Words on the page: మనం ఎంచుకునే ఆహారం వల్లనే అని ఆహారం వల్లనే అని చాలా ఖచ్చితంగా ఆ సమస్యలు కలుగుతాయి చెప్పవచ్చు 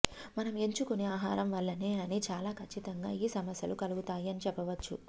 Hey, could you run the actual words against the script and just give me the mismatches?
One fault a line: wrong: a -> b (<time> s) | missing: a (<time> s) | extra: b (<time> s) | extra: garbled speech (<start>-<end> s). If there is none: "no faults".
missing: ఆహారం వల్లనే అని (2.2 s)
wrong: ఆ -> ఈ (3.2 s)
extra: అని (4.3 s)